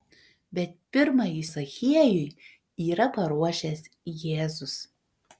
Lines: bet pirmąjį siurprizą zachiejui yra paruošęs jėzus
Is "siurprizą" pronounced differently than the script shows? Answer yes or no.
yes